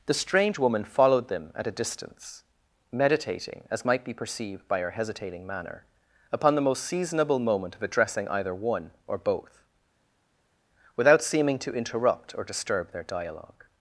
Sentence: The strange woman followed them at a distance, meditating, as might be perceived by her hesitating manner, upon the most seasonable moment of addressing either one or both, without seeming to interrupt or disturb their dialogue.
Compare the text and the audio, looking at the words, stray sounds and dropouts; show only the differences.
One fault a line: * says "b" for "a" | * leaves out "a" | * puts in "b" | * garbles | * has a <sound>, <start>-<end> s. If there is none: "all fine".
all fine